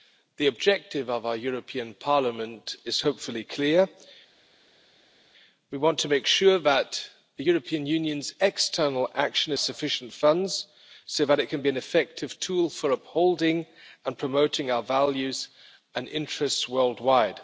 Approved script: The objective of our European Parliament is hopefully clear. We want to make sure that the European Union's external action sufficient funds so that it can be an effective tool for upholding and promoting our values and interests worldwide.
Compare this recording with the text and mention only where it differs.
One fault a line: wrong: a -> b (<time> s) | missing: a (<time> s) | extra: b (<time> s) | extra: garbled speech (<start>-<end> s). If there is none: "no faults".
no faults